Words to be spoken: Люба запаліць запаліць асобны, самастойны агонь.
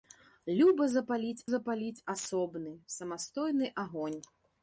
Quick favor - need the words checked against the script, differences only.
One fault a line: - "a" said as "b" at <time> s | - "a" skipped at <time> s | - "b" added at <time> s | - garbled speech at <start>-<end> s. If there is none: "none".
none